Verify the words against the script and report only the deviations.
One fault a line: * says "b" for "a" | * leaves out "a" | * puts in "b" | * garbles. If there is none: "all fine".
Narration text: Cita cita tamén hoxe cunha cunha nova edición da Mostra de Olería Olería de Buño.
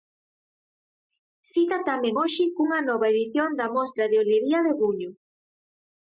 * leaves out "cita"
* leaves out "cunha"
* leaves out "Olería"